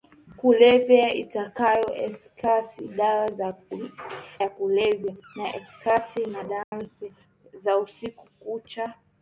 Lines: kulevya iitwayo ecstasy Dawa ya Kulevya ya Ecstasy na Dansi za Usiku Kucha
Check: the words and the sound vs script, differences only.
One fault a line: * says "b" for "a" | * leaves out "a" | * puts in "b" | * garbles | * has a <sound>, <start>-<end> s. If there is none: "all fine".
* leaves out "Dawa"
* has a dropout, 6.6-6.7 s